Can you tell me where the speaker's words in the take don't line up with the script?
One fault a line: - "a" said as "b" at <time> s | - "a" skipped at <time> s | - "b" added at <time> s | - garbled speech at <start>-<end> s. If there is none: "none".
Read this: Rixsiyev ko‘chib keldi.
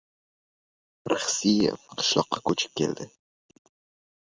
- "qishloqqa" added at 2.0 s